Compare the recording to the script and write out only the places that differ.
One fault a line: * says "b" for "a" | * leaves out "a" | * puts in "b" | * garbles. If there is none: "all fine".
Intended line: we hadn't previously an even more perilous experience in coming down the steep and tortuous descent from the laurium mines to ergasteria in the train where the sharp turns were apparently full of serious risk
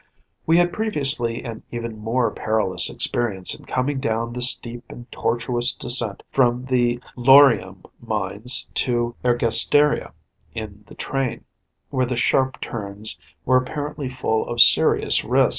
* says "had" for "hadn't"